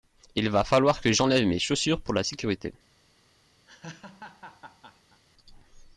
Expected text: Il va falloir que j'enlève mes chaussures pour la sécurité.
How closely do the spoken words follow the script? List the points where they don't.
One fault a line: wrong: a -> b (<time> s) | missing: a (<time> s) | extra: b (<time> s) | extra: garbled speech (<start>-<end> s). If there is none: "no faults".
no faults